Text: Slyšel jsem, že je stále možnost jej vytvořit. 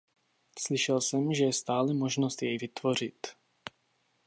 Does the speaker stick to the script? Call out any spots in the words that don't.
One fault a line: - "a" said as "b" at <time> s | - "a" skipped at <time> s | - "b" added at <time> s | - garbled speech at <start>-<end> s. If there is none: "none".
none